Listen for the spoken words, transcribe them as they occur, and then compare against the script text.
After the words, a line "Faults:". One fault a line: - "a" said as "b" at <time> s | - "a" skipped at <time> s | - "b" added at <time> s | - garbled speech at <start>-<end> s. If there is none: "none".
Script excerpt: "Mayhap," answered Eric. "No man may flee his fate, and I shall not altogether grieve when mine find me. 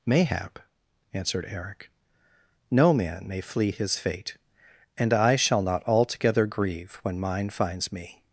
"Mayhap," answered Eric. "No man may flee his fate, and I shall not altogether grieve when mine finds me.
Faults:
- "find" said as "finds" at 7.5 s